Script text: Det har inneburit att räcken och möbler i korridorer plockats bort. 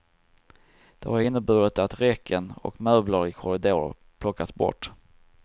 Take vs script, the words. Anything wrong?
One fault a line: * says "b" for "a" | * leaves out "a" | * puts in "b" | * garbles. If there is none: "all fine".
all fine